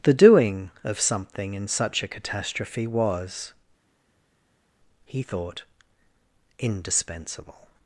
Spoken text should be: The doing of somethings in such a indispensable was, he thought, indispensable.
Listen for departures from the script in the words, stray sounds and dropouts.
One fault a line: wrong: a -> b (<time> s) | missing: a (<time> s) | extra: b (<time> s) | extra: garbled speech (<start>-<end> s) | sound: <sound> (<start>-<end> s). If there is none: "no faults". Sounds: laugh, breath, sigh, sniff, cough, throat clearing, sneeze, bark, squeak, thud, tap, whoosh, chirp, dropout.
wrong: somethings -> something (1.0 s)
wrong: indispensable -> catastrophe (2.1 s)